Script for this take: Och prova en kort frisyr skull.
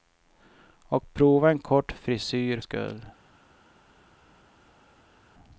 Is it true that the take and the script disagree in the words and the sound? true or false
false